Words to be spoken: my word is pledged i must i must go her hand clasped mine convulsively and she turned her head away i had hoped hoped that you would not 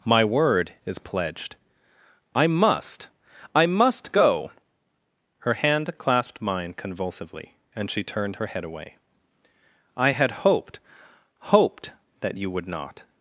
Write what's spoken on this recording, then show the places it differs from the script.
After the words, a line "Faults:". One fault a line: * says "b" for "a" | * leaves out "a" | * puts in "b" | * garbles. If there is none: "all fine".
my word is pledged i must i must go her hand clasped mine convulsively and she turned her head away i had hoped hoped that you would not
Faults:
all fine